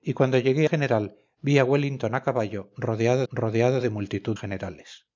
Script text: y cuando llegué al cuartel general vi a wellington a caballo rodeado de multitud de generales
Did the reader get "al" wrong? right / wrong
wrong